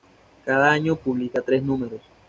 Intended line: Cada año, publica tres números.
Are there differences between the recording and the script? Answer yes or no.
no